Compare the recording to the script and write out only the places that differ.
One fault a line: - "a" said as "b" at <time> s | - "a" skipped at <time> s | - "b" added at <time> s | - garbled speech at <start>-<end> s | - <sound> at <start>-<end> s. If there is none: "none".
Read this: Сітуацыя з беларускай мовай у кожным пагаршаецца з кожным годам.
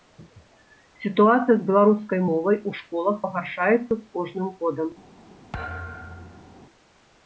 - "кожным" said as "школах" at 2.8 s
- thud at 5.5-6.6 s